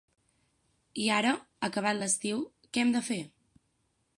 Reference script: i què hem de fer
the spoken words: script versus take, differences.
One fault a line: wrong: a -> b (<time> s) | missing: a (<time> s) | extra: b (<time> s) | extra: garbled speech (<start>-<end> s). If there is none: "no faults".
extra: ara acabat l'estiu (1.2 s)